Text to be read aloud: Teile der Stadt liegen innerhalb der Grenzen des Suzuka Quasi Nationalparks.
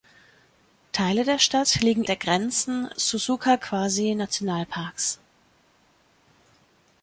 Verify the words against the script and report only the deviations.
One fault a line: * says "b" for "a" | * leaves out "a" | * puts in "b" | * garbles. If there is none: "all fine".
* leaves out "innerhalb"
* leaves out "des"